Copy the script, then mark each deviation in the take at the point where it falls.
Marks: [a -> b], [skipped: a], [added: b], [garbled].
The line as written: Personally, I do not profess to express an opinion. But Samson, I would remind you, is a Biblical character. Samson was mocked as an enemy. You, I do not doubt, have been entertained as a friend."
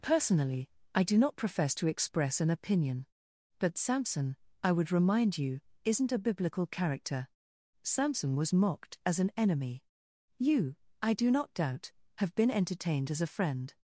Personally, I do not profess to express an opinion. But Samson, I would remind you, [is -> isn't] a Biblical character. Samson was mocked as an enemy. You, I do not doubt, have been entertained as a friend."